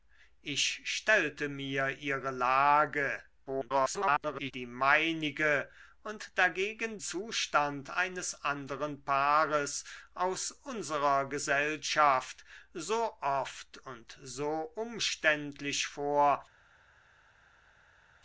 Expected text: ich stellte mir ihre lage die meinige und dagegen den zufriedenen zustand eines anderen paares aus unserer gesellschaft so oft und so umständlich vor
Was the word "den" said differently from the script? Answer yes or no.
yes